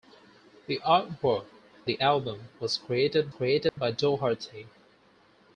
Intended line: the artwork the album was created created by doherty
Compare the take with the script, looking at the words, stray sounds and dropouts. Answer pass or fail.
fail